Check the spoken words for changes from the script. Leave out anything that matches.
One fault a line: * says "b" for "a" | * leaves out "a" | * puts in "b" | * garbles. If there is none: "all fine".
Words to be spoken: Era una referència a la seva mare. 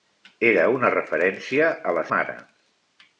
* leaves out "seva"